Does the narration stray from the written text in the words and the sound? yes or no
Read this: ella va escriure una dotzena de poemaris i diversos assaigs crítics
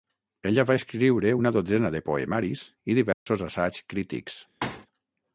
yes